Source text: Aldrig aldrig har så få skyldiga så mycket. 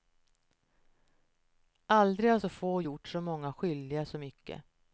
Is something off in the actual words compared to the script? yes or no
yes